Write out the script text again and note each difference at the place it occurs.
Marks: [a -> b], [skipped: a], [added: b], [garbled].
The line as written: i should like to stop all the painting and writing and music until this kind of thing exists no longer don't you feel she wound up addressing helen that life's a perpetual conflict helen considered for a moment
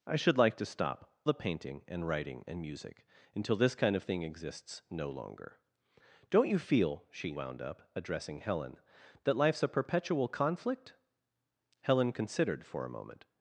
i should like to stop [skipped: all] the painting and writing and music until this kind of thing exists no longer don't you feel she wound up addressing helen that life's a perpetual conflict helen considered for a moment